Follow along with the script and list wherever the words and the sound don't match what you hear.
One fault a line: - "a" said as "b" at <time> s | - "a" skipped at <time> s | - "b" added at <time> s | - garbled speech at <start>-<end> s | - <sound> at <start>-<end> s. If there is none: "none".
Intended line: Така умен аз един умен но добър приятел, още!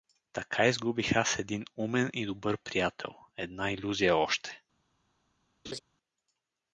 - "умен" said as "изгубих" at 0.7 s
- "но" said as "и" at 2.1 s
- "една илюзия" added at 3.4 s
- laugh at 5.6-5.8 s